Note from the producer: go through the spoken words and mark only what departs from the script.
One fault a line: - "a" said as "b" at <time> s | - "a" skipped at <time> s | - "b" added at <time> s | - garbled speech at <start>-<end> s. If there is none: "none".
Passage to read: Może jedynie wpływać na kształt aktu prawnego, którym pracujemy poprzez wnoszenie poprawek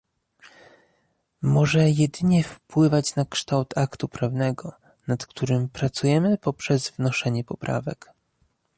- "nad" added at 5.1 s